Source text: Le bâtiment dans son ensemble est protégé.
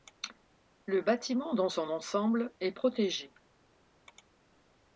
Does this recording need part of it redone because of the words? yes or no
no